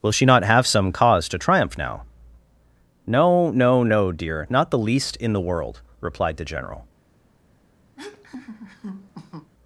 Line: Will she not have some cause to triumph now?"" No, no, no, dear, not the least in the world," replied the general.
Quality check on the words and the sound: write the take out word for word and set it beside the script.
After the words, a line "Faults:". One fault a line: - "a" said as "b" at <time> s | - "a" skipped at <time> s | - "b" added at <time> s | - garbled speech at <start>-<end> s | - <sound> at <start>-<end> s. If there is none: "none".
Will she not have some cause to triumph now?"" No, no, no, dear, not the least in the world," replied the general.
Faults:
- laugh at 8.0-9.5 s